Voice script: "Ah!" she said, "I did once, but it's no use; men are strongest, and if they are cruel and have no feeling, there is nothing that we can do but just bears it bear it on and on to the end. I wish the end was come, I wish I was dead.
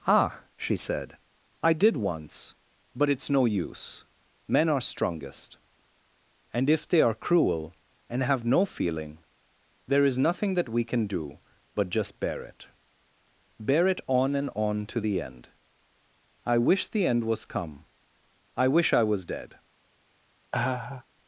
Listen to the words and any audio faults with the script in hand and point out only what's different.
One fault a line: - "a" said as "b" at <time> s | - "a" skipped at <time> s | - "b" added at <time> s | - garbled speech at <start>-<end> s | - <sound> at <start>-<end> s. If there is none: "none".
- "bears" said as "bear" at 12.2 s
- laugh at 20.5-21.0 s